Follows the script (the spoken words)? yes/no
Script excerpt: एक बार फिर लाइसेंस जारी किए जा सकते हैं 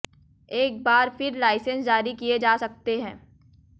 yes